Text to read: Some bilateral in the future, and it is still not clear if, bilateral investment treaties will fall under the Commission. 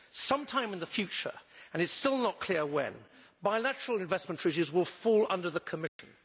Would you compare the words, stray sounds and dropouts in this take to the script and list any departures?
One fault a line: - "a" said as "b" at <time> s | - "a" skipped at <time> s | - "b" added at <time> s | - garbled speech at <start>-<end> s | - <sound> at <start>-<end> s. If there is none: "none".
- "bilateral" said as "time" at 0.5 s
- "if" said as "when" at 2.6 s
- dropout at 5.9-6.0 s